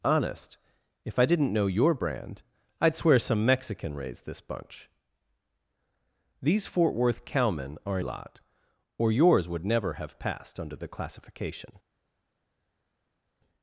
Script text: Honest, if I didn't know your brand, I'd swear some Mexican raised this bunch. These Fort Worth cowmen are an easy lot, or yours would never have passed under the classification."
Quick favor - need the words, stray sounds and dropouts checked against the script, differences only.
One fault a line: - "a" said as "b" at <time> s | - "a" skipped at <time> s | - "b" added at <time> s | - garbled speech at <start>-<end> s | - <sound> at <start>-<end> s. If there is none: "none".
- "an easy" skipped at 8.0 s